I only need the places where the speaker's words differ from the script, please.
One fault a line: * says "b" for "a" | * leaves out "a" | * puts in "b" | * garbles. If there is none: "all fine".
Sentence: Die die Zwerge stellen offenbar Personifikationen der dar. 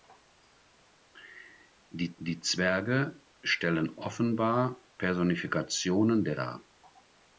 all fine